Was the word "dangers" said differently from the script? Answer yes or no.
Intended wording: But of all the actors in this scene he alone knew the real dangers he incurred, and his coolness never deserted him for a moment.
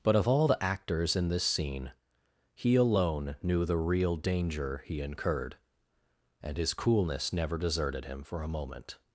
yes